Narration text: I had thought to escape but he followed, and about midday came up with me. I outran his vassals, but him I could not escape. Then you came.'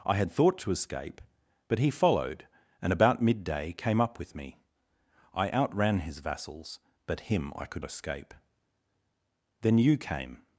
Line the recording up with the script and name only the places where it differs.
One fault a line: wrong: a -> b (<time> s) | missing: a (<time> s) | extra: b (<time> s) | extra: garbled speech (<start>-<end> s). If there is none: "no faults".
missing: not (7.8 s)